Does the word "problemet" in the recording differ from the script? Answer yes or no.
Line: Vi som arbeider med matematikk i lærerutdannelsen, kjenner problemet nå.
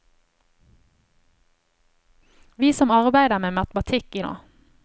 yes